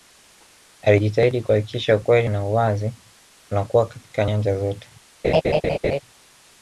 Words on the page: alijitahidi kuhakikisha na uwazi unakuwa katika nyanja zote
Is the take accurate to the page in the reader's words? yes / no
no